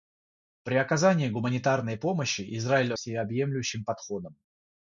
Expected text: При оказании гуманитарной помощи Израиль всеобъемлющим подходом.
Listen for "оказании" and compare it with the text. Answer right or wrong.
right